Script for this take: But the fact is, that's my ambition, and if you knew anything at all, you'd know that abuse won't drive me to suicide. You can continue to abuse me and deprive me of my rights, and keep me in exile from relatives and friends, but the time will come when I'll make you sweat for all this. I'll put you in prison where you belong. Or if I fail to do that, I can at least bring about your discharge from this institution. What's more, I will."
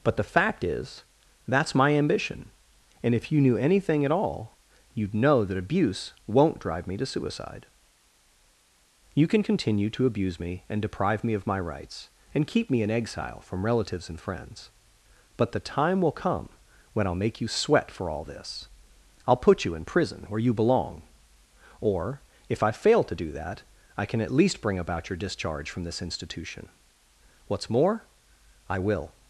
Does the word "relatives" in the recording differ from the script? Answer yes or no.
no